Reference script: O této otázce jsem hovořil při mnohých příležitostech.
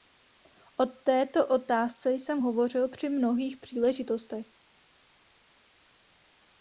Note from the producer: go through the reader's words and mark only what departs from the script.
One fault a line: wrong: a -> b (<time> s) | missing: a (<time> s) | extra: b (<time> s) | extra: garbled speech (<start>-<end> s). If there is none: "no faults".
no faults